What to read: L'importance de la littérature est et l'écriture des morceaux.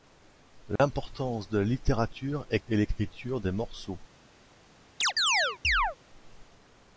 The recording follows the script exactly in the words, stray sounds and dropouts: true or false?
false